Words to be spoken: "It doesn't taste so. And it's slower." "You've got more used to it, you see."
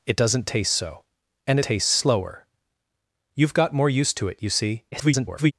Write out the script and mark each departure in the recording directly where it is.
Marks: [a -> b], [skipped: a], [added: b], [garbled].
"It doesn't taste so. And [it's -> taste] slower." "You've got more used to it, you see." [garbled]